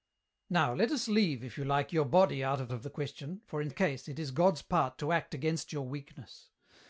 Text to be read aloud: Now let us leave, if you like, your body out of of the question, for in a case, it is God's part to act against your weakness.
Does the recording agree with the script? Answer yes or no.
yes